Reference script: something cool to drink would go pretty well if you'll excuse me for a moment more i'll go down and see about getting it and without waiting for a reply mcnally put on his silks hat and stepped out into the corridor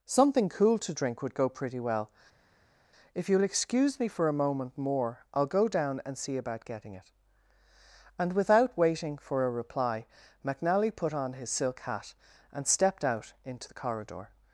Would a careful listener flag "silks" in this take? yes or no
yes